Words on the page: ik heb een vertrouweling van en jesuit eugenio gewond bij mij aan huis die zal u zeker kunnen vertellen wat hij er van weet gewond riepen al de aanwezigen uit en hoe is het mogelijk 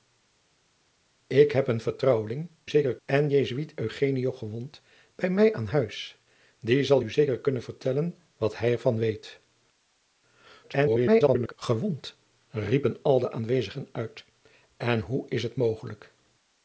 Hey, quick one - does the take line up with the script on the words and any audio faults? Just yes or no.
no